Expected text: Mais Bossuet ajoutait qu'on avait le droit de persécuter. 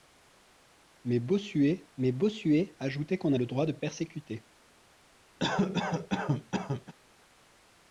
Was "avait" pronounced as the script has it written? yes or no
no